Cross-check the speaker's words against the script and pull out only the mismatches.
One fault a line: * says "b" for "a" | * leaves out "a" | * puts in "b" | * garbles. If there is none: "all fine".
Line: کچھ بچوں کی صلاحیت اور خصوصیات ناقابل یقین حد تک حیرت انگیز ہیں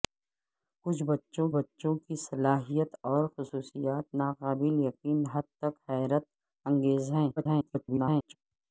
* puts in "بچوں"
* garbles